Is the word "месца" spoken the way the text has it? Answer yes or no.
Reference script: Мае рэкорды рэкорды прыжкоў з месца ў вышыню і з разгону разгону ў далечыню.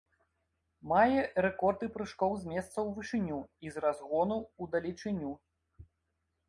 yes